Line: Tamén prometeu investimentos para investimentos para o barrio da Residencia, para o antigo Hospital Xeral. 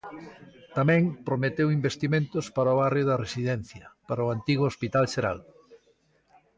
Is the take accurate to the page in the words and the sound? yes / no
no